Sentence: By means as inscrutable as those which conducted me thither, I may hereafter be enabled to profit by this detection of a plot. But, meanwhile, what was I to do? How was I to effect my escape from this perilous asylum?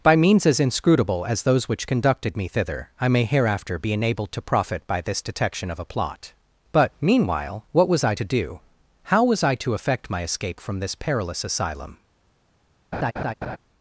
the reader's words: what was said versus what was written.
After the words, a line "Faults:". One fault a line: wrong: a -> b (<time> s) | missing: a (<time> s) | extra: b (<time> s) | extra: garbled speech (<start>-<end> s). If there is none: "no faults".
By means as inscrutable as those which conducted me thither, I may hereafter be enabled to profit by this detection of a plot. But, meanwhile, what was I to do? How was I to effect my escape from this perilous asylum?
Faults:
no faults